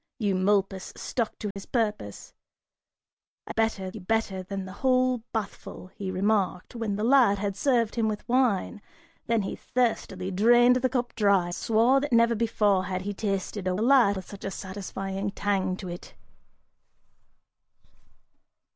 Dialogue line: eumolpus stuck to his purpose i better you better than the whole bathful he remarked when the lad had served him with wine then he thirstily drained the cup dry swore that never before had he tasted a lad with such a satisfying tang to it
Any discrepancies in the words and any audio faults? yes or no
yes